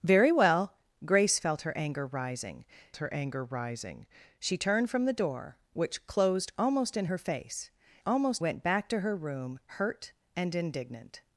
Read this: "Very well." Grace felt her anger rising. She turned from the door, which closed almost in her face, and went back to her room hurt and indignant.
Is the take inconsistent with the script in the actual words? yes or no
yes